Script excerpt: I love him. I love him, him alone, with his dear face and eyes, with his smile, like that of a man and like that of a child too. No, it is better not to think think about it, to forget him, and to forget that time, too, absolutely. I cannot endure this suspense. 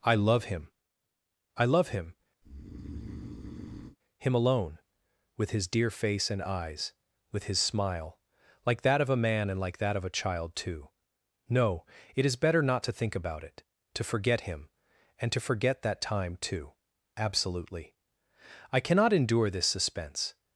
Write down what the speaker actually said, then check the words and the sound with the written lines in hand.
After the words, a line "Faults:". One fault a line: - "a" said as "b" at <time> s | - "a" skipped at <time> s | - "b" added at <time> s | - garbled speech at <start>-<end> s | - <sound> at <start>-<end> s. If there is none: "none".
I love him. I love him, him alone, with his dear face and eyes, with his smile, like that of a man and like that of a child too. No, it is better not to think about it, to forget him, and to forget that time, too, absolutely. I cannot endure this suspense.
Faults:
- breath at 2.4-4.0 s
- "think" skipped at 13.2 s